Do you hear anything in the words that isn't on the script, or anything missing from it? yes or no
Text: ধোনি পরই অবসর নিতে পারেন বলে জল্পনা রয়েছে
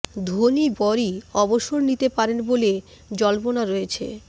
no